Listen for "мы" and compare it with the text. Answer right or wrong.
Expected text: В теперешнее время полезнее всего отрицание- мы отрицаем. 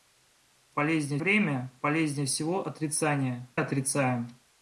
wrong